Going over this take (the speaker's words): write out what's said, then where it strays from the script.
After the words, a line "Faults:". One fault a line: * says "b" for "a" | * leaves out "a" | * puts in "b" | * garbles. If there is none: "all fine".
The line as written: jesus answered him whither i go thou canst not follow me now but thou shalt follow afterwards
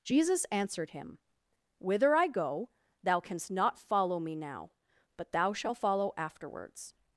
jesus answered him whither i go thou canst not follow me now but thou shalt follow afterwards
Faults:
all fine